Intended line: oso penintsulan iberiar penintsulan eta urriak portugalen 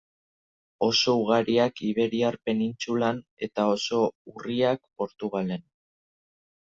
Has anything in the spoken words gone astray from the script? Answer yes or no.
yes